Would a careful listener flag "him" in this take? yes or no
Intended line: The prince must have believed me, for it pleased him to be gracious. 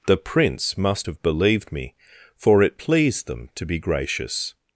yes